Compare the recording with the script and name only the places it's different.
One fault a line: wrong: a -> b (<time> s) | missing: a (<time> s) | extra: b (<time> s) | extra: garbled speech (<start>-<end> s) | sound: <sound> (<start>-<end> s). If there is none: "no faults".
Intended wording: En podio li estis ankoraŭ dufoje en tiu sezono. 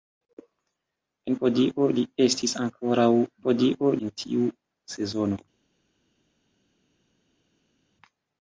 wrong: dufoje -> podio (3.4 s)